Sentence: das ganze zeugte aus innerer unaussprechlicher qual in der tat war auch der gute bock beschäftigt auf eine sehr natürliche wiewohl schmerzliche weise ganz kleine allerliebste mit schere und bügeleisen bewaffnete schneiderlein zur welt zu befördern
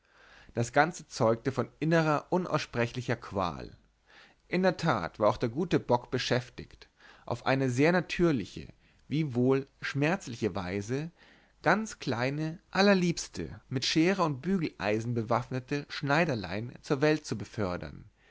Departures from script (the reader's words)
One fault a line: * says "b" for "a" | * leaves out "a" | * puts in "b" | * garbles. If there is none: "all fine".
* says "von" for "aus"